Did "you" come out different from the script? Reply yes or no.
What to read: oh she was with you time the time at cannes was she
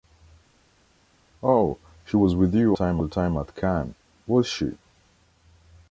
no